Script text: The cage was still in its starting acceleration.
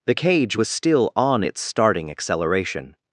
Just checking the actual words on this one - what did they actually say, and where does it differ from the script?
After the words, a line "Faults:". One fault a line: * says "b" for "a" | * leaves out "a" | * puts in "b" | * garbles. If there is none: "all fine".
The cage was still on its starting acceleration.
Faults:
* says "on" for "in"